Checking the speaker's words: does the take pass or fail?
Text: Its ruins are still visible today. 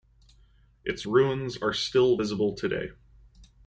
pass